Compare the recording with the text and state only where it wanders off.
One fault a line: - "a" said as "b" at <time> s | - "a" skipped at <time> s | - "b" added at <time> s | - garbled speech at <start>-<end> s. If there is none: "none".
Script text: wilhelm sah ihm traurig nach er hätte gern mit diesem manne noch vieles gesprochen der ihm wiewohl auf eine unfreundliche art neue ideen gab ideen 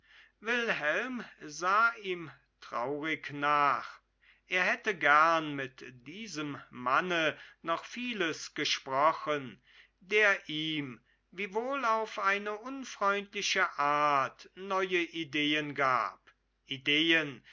none